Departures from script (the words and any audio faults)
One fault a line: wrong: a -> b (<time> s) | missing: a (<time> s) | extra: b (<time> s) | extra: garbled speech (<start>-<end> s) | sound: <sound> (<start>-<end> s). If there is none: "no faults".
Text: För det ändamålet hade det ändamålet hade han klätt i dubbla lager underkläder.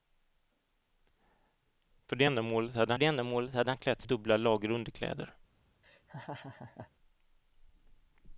sound: laugh (5.8-6.9 s)